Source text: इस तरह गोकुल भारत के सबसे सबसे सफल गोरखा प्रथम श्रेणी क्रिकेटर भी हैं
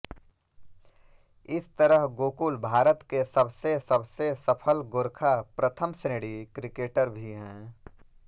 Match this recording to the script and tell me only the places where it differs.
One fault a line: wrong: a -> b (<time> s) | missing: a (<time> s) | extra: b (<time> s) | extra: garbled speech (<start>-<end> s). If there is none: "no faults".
no faults